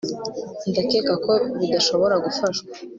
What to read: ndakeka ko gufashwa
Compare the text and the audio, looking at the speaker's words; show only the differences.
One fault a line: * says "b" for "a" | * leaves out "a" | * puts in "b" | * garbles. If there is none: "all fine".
* puts in "bidashobora"